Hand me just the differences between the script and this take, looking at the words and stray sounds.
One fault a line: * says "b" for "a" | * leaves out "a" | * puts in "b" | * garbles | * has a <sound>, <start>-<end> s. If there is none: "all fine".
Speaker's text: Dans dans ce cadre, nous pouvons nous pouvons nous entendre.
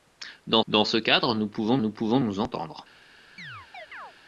* has a chirp, 3.4-4.1 s